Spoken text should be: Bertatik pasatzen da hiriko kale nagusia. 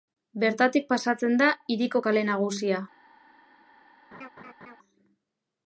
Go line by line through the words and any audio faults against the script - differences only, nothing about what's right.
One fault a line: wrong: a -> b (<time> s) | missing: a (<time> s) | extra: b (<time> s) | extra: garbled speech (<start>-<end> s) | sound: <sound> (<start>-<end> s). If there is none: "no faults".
sound: laugh (4.1-4.8 s)